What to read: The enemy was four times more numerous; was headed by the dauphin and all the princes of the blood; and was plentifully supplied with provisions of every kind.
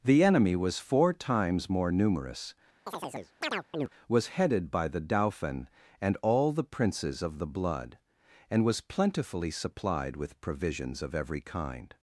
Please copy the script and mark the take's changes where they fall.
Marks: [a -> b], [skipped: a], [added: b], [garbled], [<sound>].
The enemy was four times more numerous; [chirp] was headed by the dauphin and all the princes of the blood; and was plentifully supplied with provisions of every kind.